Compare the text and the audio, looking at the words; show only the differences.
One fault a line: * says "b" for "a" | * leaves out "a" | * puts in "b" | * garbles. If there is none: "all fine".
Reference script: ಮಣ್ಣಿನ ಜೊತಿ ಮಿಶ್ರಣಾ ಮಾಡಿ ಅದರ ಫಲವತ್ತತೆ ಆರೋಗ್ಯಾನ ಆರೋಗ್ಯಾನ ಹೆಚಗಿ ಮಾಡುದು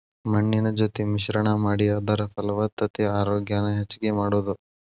* leaves out "ಆರೋಗ್ಯಾನ"